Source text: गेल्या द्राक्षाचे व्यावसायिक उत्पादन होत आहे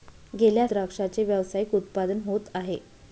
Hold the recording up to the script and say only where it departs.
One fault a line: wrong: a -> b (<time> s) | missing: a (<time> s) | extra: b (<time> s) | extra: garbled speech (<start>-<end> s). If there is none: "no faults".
no faults